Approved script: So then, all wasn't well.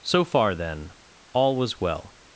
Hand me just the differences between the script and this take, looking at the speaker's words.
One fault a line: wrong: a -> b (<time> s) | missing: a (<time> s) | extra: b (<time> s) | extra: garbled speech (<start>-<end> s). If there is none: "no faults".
extra: far (0.2 s)
wrong: wasn't -> was (1.6 s)